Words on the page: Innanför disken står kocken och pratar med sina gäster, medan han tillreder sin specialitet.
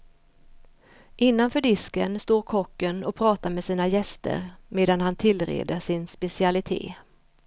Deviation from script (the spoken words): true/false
false